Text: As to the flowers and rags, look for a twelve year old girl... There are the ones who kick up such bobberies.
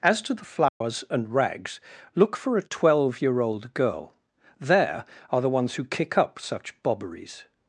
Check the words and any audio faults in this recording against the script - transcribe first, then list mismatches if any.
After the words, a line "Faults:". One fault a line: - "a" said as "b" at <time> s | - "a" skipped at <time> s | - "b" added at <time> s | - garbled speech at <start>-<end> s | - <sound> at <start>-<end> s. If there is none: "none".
As to the flowers and rags, look for a twelve year old girl... There are the ones who kick up such bobberies.
Faults:
- dropout at 0.7-0.8 s